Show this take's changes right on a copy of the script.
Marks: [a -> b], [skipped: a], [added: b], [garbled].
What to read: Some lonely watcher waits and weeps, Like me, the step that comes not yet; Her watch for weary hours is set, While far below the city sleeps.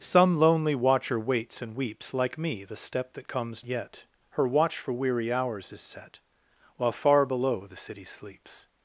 Some lonely watcher waits and weeps, Like me, the step that comes [skipped: not] yet; Her watch for weary hours is set, While far below the city sleeps.